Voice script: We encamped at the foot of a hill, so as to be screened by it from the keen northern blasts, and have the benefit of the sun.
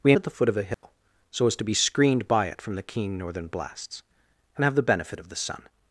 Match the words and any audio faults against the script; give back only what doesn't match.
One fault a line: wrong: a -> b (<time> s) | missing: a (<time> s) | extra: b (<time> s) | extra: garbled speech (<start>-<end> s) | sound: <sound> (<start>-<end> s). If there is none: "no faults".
missing: encamped (0.1 s)
sound: dropout (0.7-0.8 s)